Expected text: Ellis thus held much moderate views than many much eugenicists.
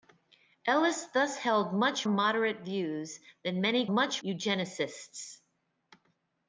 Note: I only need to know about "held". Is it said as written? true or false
true